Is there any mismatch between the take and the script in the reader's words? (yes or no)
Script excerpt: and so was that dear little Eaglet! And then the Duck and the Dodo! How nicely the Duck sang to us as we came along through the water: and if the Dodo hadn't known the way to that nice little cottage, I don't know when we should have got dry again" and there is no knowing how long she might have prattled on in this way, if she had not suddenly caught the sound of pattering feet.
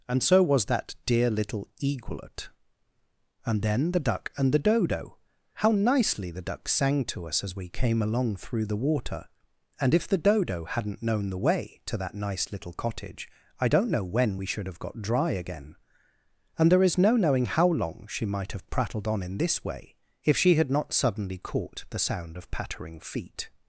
no